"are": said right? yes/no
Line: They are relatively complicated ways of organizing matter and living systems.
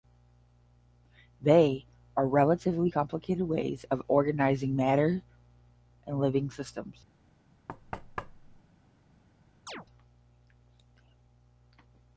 yes